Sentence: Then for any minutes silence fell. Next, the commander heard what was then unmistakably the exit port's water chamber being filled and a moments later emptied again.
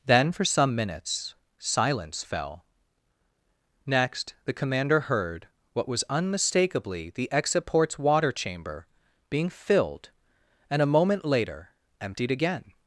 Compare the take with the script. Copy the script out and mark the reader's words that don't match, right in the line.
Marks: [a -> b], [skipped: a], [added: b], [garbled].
Then for [any -> some] minutes silence fell. Next, the commander heard what was [skipped: then] unmistakably the exit port's water chamber being filled and a [moments -> moment] later emptied again.